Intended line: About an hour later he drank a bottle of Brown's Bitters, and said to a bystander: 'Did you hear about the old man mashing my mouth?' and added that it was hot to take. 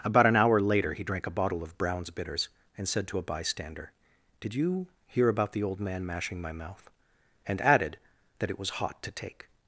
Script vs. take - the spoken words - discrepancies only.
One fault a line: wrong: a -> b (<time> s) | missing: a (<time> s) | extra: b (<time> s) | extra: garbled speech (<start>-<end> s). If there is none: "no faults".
no faults